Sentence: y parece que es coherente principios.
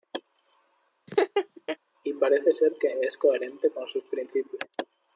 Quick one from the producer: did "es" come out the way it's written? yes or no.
yes